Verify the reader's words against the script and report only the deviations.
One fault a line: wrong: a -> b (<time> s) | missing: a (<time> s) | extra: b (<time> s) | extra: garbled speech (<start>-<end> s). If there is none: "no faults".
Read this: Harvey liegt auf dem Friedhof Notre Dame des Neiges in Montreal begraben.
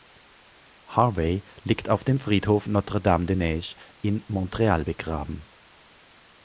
no faults